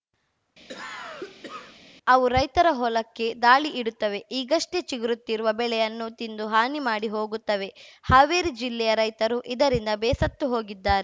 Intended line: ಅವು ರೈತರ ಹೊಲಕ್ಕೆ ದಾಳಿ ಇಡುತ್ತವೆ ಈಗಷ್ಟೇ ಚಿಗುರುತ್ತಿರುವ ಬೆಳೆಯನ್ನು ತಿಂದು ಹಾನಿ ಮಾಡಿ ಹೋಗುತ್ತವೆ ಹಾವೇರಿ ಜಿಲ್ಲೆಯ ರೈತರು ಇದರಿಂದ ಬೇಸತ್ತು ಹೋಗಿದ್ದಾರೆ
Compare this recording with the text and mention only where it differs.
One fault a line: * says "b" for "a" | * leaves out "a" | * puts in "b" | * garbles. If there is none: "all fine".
all fine